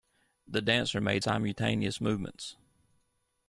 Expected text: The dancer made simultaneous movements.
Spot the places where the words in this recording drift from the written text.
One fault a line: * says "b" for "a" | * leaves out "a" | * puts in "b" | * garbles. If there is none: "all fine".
all fine